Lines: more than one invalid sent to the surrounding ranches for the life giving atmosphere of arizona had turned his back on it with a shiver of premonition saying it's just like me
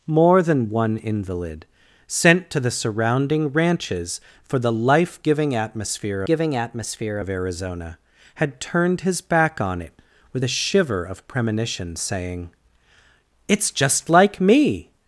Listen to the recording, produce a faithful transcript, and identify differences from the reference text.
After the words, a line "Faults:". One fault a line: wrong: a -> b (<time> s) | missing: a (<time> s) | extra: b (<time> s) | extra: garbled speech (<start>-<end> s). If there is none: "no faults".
more than one invalid sent to the surrounding ranches for the life giving atmosphere giving atmosphere of arizona had turned his back on it with a shiver of premonition saying it's just like me
Faults:
extra: giving atmosphere (6.3 s)